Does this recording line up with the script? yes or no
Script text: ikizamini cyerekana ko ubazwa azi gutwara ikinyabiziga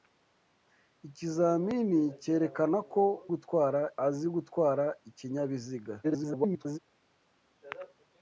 no